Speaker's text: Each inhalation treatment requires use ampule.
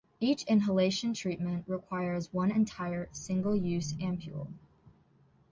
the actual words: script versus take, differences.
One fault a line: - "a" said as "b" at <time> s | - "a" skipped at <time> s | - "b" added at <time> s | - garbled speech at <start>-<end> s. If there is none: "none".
- "one entire single" added at 2.3 s